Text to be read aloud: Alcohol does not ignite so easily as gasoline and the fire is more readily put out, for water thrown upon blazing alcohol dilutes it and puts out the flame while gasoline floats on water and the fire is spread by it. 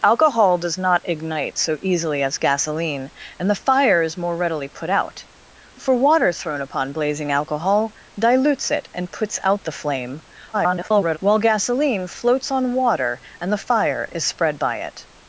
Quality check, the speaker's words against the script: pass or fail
fail